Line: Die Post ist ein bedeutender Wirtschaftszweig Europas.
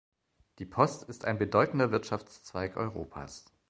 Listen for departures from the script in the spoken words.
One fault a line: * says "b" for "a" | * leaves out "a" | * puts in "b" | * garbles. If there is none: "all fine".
all fine